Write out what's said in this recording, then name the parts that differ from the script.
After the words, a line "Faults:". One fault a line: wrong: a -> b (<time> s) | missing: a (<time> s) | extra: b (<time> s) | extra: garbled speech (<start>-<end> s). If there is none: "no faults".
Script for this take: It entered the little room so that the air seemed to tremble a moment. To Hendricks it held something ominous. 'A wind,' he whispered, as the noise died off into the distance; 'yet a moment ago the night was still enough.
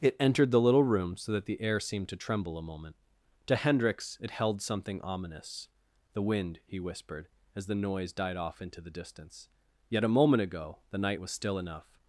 It entered the little room so that the air seemed to tremble a moment. To Hendricks it held something ominous. 'The wind,' he whispered, as the noise died off into the distance; 'yet a moment ago the night was still enough.
Faults:
wrong: A -> The (6.1 s)